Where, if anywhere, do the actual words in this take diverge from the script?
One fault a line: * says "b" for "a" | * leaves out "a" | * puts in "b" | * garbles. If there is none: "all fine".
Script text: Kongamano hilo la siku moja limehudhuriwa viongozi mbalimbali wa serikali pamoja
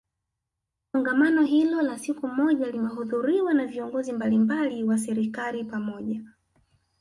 * puts in "na"